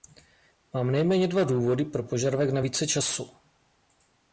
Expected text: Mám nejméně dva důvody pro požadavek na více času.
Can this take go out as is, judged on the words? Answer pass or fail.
pass